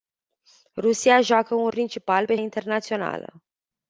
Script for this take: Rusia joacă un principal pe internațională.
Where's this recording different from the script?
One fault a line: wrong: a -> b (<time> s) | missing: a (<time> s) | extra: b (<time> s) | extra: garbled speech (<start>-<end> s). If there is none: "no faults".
no faults